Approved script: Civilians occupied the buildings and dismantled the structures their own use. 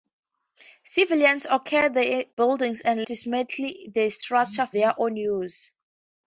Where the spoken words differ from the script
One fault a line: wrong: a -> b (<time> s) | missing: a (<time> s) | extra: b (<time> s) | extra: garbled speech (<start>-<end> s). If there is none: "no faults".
no faults